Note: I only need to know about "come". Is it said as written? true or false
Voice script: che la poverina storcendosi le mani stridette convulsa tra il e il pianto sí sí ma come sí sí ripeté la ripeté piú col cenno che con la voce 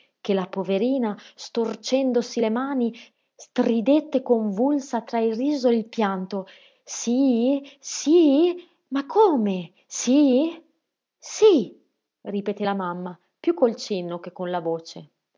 true